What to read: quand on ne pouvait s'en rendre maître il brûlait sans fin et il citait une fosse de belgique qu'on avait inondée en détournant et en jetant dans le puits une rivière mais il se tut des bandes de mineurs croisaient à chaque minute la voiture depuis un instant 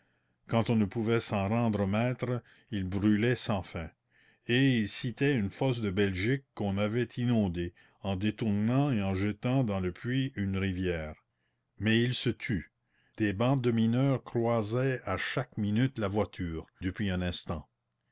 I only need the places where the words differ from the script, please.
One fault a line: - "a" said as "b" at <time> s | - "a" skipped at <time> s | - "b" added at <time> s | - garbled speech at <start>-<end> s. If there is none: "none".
none